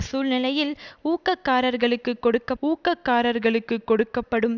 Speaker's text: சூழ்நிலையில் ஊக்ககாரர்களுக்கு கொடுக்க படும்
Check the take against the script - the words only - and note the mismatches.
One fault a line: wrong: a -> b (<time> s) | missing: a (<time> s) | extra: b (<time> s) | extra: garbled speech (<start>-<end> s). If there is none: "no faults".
extra: ஊக்ககாரர்களுக்கு கொடுக்க (2.6 s)